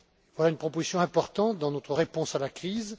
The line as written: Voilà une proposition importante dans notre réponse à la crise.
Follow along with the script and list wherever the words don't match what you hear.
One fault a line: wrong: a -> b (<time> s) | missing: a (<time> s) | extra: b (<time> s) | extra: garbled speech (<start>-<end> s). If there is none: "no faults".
no faults